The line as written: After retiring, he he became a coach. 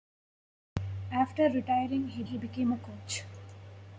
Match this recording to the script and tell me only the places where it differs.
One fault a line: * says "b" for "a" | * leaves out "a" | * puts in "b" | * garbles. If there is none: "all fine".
all fine